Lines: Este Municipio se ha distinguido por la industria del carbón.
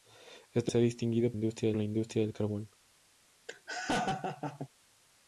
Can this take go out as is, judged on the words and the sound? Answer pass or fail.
fail